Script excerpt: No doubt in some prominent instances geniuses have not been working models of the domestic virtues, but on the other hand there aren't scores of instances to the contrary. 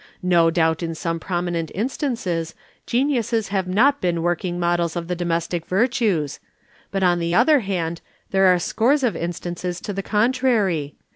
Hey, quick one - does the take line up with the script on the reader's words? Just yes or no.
no